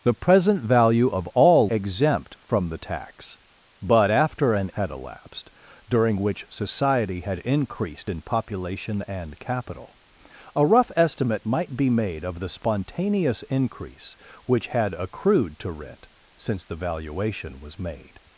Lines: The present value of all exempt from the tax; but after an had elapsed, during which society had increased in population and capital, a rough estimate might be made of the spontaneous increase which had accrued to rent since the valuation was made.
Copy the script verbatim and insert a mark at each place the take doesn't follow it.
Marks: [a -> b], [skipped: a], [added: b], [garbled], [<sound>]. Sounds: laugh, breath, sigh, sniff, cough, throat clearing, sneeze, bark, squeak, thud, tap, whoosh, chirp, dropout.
The present value of all exempt from the tax; but after an had elapsed, during which society had increased in population and capital, a rough estimate might be made of the spontaneous increase which had accrued to rent since the valuation was made.